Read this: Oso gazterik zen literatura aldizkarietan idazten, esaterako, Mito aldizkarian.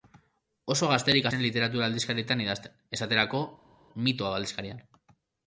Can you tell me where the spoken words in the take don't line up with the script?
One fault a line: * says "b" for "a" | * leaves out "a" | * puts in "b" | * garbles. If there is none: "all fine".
all fine